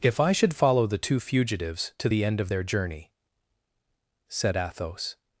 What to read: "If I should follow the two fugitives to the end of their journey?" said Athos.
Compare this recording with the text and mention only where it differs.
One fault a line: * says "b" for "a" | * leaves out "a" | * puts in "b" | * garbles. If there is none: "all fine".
all fine